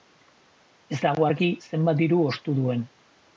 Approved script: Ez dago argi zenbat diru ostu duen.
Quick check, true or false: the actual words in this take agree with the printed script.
true